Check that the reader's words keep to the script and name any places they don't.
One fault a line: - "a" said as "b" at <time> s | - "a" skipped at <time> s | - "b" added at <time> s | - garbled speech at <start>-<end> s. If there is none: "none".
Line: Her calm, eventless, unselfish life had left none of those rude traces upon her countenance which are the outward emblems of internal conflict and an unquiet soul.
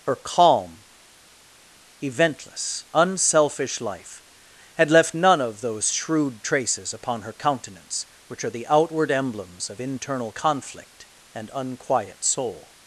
- "rude" said as "shrewd" at 5.9 s
- "an" skipped at 11.5 s